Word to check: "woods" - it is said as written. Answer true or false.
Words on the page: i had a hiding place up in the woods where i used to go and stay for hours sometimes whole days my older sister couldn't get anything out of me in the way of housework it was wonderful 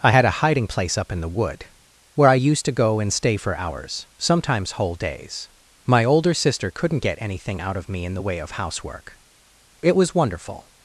false